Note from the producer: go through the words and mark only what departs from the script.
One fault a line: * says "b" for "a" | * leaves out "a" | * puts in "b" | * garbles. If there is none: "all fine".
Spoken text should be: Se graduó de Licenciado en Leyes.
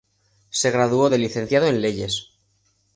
all fine